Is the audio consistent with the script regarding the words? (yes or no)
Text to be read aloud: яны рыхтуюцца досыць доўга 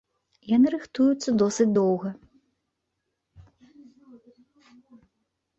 yes